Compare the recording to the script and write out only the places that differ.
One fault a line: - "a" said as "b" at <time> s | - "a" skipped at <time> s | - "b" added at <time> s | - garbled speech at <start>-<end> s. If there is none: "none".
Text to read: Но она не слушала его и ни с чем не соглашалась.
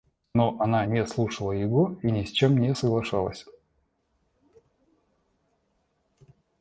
none